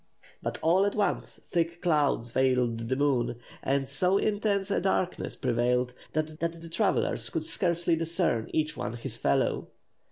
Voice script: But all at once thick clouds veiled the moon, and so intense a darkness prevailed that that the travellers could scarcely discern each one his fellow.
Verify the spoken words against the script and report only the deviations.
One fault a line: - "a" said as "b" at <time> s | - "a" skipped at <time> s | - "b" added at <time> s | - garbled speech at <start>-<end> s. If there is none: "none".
none